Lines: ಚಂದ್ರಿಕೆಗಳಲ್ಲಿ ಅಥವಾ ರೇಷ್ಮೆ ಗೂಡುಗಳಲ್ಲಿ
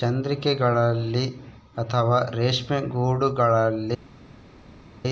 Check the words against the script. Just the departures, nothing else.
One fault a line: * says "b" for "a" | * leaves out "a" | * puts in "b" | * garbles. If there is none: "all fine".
all fine